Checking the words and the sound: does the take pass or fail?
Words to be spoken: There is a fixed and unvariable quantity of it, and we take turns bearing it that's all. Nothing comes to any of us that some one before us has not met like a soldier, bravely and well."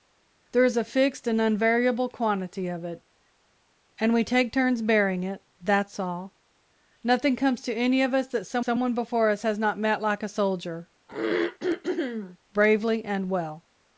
fail